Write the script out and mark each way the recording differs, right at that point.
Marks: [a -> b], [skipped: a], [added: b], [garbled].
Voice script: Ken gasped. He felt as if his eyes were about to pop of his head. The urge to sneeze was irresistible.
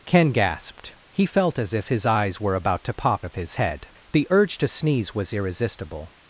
Ken gasped. He felt as if his eyes were about to pop of his head. The urge to sneeze was irresistible.